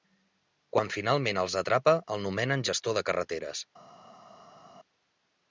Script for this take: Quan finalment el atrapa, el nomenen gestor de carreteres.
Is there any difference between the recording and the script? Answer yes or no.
yes